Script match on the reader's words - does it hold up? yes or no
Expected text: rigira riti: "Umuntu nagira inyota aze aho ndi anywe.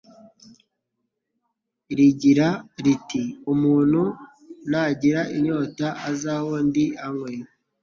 yes